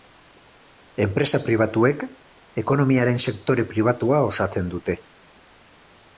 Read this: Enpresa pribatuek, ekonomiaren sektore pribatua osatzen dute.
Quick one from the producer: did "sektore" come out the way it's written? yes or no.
yes